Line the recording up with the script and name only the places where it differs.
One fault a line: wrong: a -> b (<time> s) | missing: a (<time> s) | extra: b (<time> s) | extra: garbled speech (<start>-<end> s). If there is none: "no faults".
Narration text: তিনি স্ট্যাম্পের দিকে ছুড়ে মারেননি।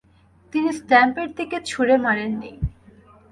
no faults